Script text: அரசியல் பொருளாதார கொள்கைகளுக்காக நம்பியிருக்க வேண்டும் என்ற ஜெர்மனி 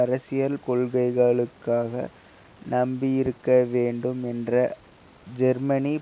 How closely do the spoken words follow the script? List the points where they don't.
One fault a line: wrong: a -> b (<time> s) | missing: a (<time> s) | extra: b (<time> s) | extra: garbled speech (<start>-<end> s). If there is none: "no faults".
missing: பொருளாதார (0.6 s)